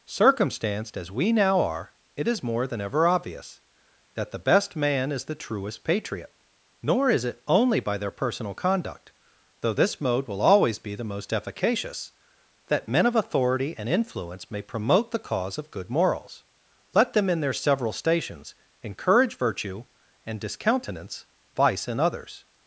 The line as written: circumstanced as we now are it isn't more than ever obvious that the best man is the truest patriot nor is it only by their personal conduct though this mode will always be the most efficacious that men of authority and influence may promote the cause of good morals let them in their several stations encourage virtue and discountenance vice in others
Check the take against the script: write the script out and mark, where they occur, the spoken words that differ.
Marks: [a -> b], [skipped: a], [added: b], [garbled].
circumstanced as we now are it [isn't -> is] more than ever obvious that the best man is the truest patriot nor is it only by their personal conduct though this mode will always be the most efficacious that men of authority and influence may promote the cause of good morals let them in their several stations encourage virtue and discountenance vice in others